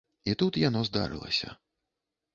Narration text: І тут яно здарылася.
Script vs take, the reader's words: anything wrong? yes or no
no